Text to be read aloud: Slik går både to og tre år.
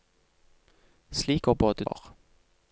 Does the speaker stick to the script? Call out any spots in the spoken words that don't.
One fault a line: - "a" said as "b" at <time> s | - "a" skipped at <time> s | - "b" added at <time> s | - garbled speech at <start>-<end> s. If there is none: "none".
- "to og tre" skipped at 1.9 s